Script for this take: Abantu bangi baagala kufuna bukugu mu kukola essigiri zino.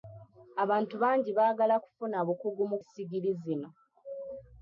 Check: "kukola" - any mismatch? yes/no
yes